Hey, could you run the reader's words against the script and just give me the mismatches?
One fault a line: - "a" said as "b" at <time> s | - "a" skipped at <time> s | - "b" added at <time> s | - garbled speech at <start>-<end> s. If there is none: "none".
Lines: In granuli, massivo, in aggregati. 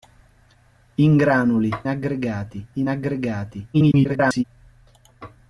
- "massivo" said as "aggregati" at 1.9 s
- garbled speech at 3.7-4.4 s